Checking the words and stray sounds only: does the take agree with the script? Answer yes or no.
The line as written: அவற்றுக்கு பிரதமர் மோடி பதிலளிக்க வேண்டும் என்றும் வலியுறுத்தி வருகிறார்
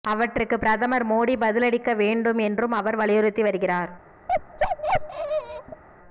no